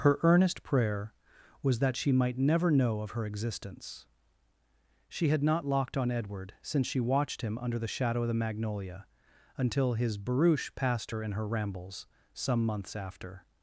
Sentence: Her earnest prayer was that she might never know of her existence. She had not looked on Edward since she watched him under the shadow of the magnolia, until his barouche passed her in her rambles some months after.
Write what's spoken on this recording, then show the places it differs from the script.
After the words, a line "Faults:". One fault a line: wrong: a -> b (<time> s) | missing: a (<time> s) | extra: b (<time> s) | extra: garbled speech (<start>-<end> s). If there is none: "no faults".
Her earnest prayer was that she might never know of her existence. She had not locked on Edward since she watched him under the shadow of the magnolia, until his barouche passed her in her rambles some months after.
Faults:
wrong: looked -> locked (5.6 s)